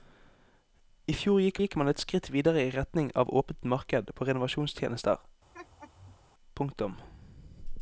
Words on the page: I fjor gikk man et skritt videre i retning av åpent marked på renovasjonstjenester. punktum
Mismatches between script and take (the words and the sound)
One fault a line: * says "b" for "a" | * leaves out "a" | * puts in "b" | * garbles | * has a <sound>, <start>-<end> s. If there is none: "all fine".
* puts in "gikk"
* has a laugh, 5.5-6.2 s